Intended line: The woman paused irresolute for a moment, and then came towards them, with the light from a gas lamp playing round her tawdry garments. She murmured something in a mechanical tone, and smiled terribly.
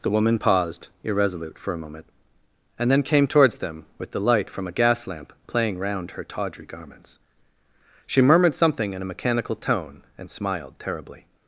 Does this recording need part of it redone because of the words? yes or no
no